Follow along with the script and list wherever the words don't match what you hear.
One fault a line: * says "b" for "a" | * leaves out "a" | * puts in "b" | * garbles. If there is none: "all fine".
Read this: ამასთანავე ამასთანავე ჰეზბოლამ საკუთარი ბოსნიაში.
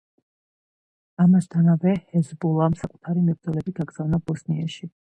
* leaves out "ამასთანავე"
* puts in "მებრძოლები გაგზავნა"